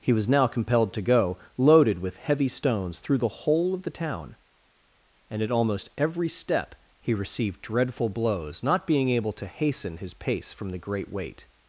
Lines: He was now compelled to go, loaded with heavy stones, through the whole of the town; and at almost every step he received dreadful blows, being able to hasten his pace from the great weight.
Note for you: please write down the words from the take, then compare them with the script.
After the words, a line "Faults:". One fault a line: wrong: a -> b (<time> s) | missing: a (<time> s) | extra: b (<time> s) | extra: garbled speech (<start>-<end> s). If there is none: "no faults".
He was now compelled to go, loaded with heavy stones, through the whole of the town; and at almost every step he received dreadful blows, not being able to hasten his pace from the great weight.
Faults:
extra: not (8.6 s)